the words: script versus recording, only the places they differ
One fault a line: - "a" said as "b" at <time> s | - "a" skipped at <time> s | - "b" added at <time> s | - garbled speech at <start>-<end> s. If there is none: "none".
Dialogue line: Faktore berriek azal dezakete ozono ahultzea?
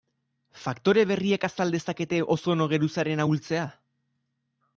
- "geruzaren" added at 2.7 s